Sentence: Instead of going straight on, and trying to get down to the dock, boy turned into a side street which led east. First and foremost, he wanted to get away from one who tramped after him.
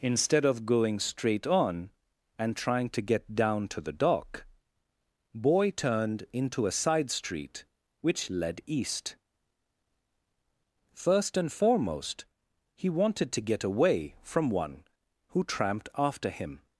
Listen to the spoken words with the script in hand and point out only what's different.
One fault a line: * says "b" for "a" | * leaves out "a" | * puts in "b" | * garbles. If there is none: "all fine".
all fine